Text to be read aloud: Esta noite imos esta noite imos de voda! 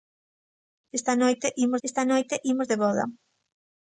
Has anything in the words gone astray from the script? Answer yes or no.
no